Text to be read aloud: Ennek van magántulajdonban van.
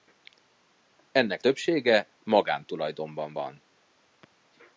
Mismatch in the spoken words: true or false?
true